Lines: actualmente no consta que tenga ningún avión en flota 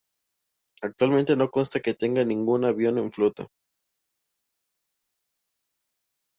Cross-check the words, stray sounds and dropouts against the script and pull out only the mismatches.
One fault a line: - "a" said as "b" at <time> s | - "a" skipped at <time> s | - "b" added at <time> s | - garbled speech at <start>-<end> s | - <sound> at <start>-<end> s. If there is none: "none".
none